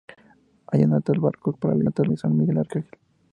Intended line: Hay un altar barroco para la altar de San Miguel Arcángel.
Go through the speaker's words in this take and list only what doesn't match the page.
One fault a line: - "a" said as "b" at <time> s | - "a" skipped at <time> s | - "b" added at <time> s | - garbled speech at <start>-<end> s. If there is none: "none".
none